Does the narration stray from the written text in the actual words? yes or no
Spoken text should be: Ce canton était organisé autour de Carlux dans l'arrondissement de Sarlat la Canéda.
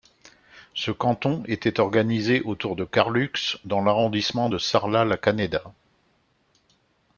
no